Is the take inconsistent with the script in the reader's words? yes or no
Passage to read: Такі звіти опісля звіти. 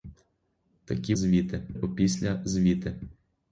no